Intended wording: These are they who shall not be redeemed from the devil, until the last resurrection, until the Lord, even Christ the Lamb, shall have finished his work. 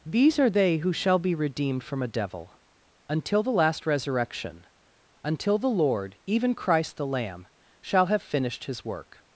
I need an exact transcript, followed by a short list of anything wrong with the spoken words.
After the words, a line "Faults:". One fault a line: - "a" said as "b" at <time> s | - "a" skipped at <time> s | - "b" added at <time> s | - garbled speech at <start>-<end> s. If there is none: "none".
These are they who shall be redeemed from a devil, until the last resurrection, until the Lord, even Christ the Lamb, shall have finished his work.
Faults:
- "not" skipped at 1.2 s
- "the" said as "a" at 2.0 s